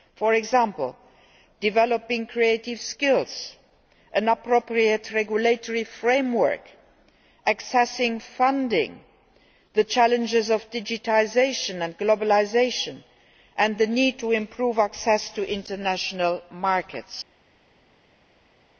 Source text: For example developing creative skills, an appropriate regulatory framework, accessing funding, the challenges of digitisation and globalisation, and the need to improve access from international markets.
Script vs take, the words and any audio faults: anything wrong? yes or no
yes